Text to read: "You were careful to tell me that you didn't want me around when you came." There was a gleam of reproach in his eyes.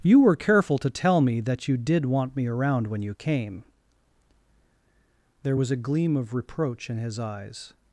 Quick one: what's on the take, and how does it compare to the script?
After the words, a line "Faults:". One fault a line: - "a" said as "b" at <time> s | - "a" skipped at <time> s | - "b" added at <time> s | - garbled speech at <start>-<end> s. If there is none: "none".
"You were careful to tell me that you did want me around when you came." There was a gleam of reproach in his eyes.
Faults:
- "didn't" said as "did" at 1.8 s